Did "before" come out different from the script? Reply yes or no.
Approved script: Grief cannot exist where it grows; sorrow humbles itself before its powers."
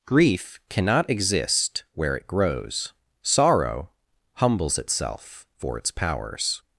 yes